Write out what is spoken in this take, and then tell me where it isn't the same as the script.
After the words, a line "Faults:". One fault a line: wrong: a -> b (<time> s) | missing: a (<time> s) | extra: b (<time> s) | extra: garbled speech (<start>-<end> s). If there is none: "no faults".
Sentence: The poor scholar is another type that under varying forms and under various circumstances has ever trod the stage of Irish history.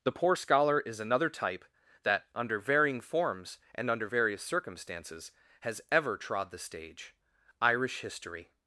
The poor scholar is another type that under varying forms and under various circumstances has ever trod the stage Irish history.
Faults:
missing: of (7.2 s)